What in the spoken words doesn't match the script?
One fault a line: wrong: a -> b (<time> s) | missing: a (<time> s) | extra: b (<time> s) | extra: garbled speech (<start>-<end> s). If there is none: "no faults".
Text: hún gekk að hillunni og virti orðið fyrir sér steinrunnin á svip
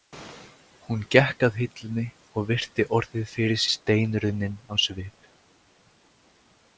missing: sér (3.6 s)